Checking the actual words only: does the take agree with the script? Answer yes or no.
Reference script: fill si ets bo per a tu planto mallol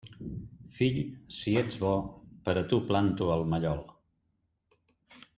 no